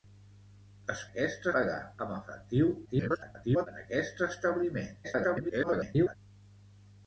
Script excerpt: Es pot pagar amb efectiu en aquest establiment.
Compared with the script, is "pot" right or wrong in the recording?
wrong